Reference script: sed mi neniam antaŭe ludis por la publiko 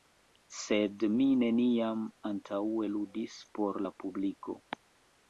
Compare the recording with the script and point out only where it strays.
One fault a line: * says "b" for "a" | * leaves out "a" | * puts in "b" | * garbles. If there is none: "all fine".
all fine